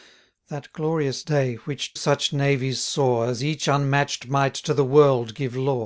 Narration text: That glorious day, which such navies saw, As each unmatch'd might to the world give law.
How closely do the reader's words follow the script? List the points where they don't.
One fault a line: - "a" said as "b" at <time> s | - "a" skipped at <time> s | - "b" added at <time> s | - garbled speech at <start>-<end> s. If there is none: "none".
none